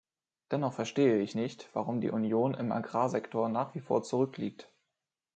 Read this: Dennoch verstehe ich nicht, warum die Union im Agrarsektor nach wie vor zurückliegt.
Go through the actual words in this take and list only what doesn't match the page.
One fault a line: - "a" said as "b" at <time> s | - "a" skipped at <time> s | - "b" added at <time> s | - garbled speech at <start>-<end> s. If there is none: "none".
none